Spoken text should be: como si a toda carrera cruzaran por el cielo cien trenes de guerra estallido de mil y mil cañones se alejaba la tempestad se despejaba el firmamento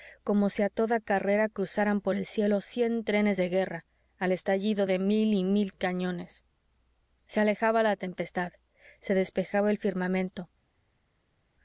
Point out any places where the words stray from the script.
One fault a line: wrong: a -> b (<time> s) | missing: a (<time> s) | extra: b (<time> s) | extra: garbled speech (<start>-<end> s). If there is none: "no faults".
extra: al (4.2 s)